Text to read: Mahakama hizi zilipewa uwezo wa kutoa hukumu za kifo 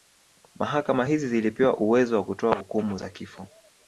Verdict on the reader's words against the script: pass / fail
pass